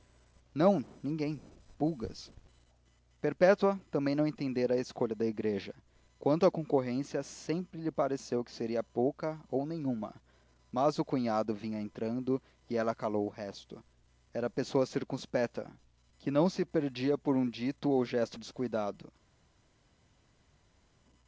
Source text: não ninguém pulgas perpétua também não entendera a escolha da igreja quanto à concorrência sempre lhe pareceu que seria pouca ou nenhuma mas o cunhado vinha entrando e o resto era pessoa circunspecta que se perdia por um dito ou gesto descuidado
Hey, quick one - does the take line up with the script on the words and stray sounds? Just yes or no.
no